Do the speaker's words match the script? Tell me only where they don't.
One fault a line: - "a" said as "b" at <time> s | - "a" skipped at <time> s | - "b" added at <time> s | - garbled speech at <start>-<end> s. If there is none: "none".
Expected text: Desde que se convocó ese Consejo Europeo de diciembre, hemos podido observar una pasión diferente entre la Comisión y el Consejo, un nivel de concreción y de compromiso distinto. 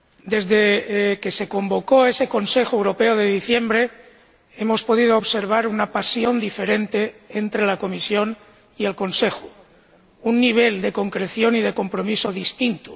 none